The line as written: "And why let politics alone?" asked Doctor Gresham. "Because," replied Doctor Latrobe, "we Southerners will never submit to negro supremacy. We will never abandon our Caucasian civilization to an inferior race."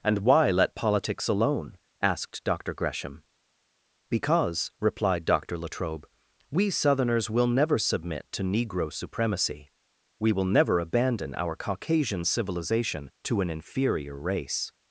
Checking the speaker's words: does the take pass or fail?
pass